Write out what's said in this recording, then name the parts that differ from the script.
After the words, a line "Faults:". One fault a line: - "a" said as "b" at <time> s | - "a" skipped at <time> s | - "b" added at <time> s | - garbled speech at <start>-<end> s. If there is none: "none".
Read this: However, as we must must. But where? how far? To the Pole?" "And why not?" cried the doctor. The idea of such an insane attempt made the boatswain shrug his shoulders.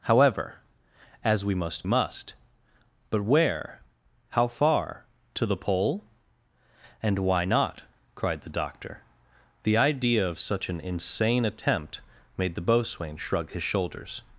However, as we must must. But where? how far? To the Pole?" "And why not?" cried the doctor. The idea of such an insane attempt made the boatswain shrug his shoulders.
Faults:
none